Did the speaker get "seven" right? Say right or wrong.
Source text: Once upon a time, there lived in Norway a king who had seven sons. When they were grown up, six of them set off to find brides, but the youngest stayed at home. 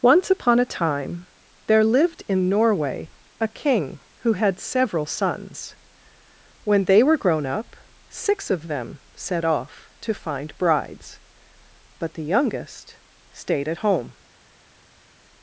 wrong